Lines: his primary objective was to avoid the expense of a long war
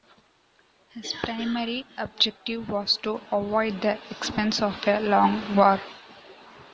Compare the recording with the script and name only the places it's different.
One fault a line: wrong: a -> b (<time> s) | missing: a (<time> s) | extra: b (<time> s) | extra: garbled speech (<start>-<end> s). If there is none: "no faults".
no faults